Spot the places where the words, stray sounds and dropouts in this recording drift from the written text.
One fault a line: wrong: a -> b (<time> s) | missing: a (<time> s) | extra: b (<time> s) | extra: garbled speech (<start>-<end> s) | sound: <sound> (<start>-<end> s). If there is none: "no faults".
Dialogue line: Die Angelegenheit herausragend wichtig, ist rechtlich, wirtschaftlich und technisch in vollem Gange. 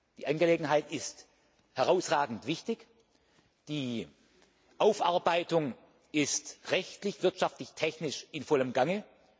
extra: ist (0.9 s)
extra: die Aufarbeitung (3.7 s)